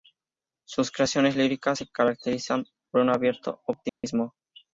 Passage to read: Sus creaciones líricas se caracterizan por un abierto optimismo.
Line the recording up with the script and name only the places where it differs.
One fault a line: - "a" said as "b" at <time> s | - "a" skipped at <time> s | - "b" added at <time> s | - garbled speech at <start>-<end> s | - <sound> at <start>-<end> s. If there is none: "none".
- dropout at 3.9-4.0 s